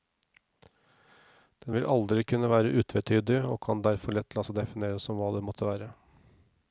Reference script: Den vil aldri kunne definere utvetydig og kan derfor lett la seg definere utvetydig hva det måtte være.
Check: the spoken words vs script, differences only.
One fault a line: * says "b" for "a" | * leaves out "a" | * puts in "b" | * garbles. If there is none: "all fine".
* says "være" for "definere"
* says "som" for "utvetydig"